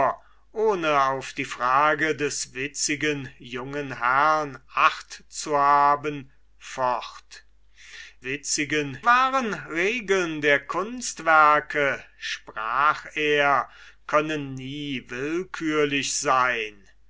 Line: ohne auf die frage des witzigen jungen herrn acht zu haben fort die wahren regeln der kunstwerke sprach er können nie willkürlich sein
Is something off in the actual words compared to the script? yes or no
yes